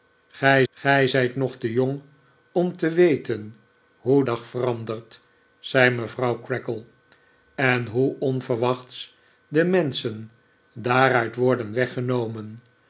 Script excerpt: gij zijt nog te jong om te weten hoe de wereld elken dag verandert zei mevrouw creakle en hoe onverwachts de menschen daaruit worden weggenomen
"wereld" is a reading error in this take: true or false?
true